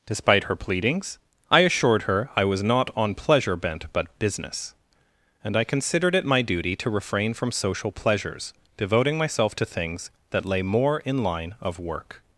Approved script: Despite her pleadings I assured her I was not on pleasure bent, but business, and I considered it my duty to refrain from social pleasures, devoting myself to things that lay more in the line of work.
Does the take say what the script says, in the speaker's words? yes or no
no